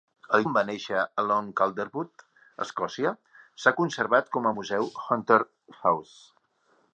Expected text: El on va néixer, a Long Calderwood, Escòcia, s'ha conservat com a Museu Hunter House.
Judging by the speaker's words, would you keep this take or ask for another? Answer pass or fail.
pass